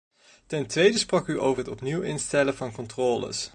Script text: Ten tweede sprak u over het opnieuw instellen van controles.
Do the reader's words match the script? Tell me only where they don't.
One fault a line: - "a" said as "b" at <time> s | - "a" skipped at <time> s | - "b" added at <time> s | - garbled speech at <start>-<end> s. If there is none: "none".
none